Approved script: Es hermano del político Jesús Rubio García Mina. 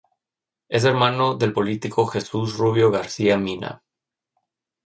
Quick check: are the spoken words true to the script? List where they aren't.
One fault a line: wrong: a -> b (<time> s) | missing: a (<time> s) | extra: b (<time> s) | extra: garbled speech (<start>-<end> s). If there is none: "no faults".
no faults